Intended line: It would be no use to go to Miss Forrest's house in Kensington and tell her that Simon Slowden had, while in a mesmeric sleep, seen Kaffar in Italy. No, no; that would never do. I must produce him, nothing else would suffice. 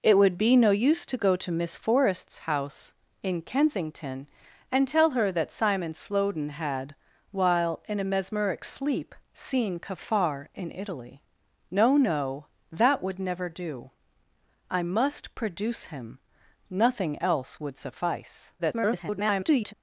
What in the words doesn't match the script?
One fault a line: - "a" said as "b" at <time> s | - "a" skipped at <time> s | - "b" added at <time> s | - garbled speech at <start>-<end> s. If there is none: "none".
- garbled speech at 18.6-19.7 s